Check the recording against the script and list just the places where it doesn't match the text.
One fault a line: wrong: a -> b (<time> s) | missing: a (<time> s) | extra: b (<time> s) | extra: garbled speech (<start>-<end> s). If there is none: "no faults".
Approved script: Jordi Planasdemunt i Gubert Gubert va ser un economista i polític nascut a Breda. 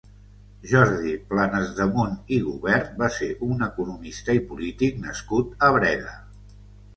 missing: Gubert (3.0 s)